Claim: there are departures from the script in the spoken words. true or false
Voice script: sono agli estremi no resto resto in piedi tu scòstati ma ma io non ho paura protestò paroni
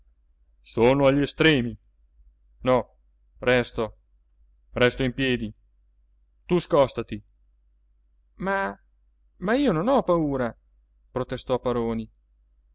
false